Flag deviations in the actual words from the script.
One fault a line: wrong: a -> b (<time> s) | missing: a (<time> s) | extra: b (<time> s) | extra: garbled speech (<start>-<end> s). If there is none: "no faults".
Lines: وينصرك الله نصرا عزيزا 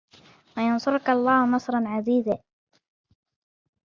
no faults